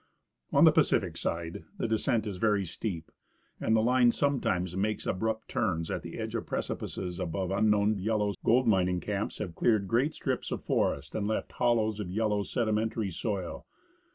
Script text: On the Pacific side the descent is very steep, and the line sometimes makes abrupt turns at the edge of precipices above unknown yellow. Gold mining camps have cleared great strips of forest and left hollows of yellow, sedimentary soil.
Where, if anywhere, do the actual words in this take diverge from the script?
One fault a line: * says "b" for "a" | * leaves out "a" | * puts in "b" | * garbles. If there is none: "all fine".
all fine